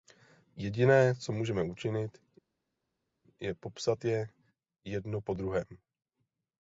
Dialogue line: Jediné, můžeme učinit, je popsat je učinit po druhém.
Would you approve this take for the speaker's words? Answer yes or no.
no